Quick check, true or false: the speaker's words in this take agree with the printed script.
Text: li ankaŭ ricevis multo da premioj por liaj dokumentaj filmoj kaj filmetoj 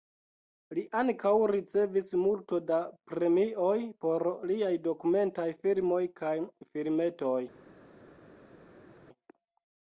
true